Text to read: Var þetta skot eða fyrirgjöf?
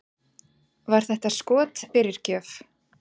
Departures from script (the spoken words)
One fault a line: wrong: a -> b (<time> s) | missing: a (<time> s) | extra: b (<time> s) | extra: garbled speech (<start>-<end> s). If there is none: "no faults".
missing: eða (1.8 s)